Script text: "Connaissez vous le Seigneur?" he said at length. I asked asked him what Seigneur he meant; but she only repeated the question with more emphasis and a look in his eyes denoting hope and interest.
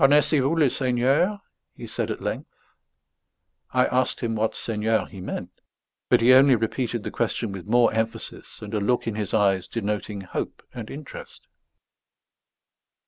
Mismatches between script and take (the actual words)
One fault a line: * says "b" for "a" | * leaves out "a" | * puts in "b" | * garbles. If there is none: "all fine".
* leaves out "asked"
* says "he" for "she"